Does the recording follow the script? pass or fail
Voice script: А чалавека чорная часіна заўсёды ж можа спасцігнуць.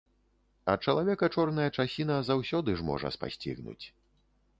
pass